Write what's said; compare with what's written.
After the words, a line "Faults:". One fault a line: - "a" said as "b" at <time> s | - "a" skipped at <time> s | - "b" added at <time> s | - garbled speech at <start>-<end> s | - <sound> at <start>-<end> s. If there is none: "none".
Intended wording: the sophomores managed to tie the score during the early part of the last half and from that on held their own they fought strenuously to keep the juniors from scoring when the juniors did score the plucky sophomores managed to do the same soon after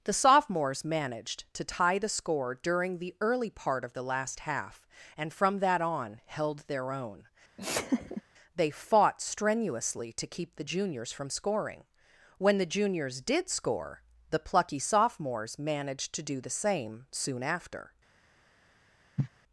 the sophomores managed to tie the score during the early part of the last half and from that on held their own they fought strenuously to keep the juniors from scoring when the juniors did score the plucky sophomores managed to do the same soon after
Faults:
- laugh at 7.6-8.2 s
- cough at 19.2-19.3 s